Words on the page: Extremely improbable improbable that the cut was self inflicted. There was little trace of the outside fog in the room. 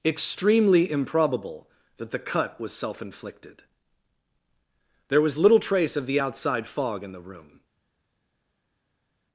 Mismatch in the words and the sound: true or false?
true